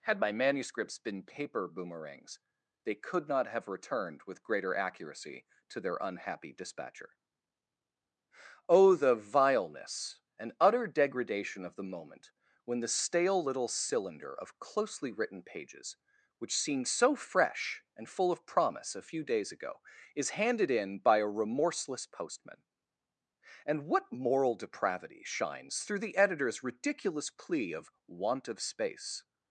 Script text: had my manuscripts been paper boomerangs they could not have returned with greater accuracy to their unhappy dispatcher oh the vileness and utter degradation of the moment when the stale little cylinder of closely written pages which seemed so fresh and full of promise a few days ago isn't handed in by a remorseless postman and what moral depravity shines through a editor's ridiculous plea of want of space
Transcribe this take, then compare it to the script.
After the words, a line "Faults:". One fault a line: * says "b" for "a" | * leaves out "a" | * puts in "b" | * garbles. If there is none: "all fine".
had my manuscripts been paper boomerangs they could not have returned with greater accuracy to their unhappy dispatcher oh the vileness and utter degradation of the moment when the stale little cylinder of closely written pages which seemed so fresh and full of promise a few days ago is handed in by a remorseless postman and what moral depravity shines through the editor's ridiculous plea of want of space
Faults:
* says "is" for "isn't"
* says "the" for "a"